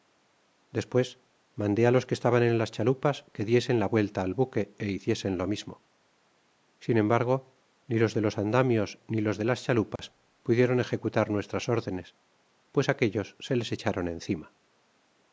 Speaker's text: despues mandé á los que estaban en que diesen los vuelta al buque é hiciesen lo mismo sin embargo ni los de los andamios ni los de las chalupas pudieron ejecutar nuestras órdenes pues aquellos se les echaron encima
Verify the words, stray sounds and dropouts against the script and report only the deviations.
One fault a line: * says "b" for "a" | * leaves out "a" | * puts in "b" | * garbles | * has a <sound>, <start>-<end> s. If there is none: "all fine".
* puts in "las chalupas"
* says "la" for "los"
* has a dropout, 10.0-10.0 s